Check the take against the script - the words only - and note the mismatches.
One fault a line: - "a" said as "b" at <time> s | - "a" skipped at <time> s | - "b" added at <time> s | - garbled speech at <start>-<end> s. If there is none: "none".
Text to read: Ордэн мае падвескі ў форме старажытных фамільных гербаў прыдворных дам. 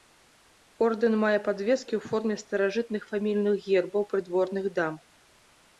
none